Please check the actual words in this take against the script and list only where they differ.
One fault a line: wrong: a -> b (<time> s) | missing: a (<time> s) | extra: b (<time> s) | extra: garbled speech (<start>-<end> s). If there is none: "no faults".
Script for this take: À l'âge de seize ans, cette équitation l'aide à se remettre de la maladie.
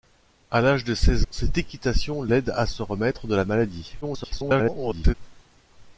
missing: ans (1.3 s)
extra: garbled speech (4.0-5.1 s)